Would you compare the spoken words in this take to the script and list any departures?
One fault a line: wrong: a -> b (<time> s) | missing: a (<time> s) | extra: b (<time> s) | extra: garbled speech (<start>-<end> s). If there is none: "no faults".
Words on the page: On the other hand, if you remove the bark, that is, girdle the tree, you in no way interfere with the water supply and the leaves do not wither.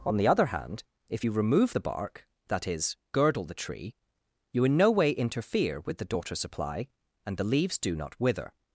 wrong: water -> daughter (6.0 s)